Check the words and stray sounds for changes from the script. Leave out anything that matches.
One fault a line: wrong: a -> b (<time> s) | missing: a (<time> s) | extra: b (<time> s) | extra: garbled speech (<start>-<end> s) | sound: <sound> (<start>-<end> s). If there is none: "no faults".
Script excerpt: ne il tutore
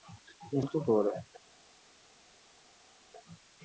no faults